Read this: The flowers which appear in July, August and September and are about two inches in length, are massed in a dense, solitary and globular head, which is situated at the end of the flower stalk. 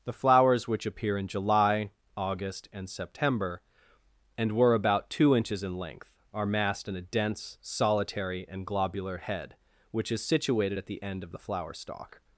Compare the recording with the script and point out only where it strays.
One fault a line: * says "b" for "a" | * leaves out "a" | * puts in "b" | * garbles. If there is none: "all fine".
* says "were" for "are"